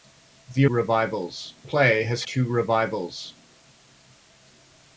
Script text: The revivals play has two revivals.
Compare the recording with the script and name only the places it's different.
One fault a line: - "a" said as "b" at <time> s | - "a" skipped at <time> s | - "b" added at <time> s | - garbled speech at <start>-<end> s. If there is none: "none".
none